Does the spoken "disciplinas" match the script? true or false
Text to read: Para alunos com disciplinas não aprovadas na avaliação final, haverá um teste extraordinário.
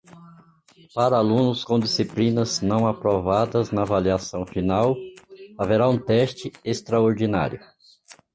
true